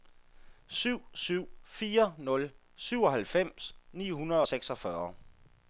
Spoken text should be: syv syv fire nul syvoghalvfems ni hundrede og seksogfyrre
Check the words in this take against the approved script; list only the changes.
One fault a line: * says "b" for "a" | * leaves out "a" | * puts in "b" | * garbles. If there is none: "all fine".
all fine